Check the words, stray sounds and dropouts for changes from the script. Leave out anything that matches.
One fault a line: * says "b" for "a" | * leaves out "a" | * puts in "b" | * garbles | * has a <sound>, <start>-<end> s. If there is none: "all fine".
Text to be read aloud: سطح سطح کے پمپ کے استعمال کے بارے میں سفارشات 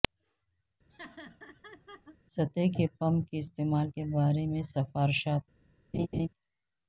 * has a laugh, 0.9-2.2 s
* leaves out "سطح"
* has a laugh, 5.9-6.3 s